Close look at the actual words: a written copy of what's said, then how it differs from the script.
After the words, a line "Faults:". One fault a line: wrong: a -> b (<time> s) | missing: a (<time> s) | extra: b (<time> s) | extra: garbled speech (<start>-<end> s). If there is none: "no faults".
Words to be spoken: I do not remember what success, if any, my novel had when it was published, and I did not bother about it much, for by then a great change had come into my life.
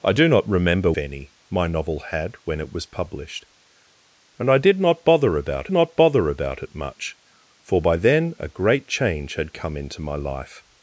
I do not remember any, my novel had when it was published, and I did not bother about not bother about it much, for by then a great change had come into my life.
Faults:
missing: what success if (0.9 s)
extra: not bother about (5.7 s)